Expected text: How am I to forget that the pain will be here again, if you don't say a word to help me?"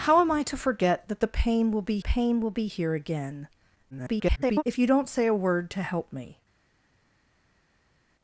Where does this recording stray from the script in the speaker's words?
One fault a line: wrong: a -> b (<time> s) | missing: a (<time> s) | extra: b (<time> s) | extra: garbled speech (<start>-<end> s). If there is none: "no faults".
extra: pain will be (2.0 s)
extra: garbled speech (3.9-4.6 s)